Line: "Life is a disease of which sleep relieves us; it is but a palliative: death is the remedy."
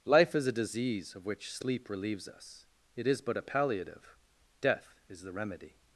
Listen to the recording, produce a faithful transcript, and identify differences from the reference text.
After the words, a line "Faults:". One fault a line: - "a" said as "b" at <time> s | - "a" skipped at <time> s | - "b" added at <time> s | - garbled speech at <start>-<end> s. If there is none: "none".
"Life is a disease of which sleep relieves us; it is but a palliative: death is the remedy."
Faults:
none